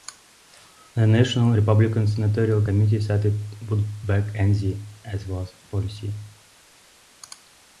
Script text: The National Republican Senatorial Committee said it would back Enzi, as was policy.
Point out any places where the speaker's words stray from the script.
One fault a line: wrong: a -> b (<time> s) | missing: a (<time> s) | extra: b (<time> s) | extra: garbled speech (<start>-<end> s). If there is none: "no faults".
no faults